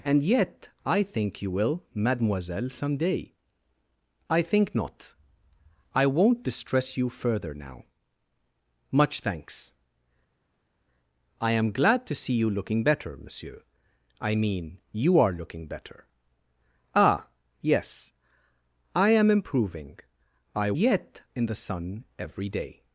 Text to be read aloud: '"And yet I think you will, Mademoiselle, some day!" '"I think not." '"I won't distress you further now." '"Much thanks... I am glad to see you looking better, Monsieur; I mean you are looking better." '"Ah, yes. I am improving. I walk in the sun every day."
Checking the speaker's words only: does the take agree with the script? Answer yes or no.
no